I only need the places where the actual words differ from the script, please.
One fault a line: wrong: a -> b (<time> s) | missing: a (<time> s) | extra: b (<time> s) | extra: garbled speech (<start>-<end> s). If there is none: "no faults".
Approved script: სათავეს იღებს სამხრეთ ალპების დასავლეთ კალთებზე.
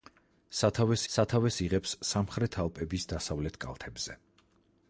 extra: სათავეს (1.1 s)